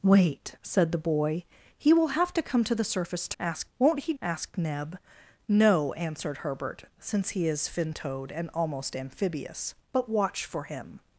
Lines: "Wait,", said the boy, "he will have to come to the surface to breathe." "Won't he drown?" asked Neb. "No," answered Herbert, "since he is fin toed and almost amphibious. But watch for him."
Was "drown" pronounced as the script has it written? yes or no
no